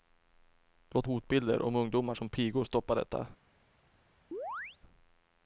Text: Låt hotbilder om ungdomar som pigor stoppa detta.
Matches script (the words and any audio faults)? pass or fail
fail